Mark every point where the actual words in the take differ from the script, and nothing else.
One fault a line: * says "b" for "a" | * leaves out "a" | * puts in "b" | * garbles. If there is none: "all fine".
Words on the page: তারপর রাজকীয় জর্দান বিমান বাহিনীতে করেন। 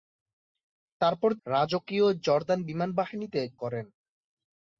all fine